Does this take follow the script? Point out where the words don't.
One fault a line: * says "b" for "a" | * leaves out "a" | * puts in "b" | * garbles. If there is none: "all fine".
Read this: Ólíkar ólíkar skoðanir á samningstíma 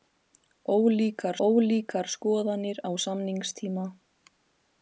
all fine